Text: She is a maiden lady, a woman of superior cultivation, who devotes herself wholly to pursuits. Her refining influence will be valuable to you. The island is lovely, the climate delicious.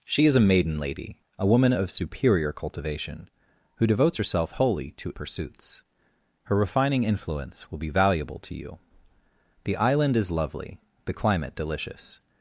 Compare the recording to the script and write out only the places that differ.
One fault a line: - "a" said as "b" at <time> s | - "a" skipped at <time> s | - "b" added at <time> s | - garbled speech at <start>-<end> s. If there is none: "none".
none